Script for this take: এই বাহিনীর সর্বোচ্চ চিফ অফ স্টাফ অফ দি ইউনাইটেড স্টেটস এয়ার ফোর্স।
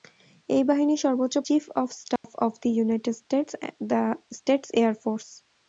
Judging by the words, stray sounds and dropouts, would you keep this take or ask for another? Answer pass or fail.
fail